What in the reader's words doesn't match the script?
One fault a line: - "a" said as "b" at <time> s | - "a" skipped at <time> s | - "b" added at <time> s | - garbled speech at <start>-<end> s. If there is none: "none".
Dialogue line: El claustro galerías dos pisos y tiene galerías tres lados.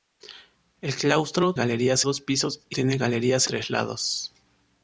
none